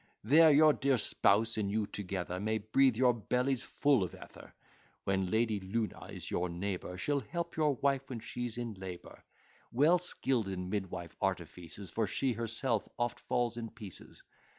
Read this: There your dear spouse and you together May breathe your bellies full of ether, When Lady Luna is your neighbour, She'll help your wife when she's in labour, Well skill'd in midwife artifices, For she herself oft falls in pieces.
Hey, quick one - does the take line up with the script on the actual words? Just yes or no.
yes